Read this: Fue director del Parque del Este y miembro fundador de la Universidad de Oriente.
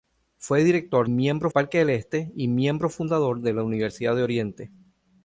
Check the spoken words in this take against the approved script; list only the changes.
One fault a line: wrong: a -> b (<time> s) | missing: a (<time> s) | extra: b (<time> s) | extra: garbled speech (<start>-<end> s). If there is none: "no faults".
wrong: del -> miembro (1.1 s)